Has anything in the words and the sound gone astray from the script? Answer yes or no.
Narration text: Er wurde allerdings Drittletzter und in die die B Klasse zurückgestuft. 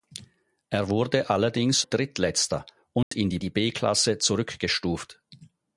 yes